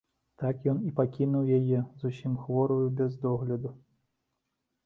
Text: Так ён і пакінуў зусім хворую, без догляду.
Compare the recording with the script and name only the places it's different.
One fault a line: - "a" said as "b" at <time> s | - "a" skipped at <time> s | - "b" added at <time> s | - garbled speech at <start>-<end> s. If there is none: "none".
- "яе" added at 1.6 s